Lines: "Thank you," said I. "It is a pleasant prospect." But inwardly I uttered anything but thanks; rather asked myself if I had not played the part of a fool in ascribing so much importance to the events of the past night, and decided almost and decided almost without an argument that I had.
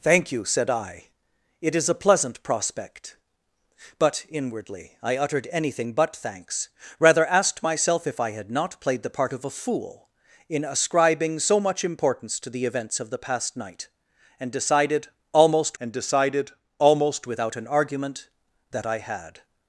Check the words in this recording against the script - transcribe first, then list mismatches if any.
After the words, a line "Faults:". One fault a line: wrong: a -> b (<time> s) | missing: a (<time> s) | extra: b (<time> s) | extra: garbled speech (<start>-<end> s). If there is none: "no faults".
"Thank you," said I. "It is a pleasant prospect." But inwardly I uttered anything but thanks; rather asked myself if I had not played the part of a fool in ascribing so much importance to the events of the past night, and decided almost and decided almost without an argument that I had.
Faults:
no faults